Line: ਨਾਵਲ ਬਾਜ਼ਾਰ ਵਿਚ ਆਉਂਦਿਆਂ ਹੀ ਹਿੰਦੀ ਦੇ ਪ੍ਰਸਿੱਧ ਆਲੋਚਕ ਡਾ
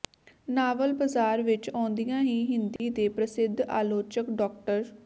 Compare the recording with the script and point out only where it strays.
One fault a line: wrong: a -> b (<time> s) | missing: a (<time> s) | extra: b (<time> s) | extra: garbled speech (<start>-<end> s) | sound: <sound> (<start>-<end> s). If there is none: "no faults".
sound: dropout (2.8-2.8 s)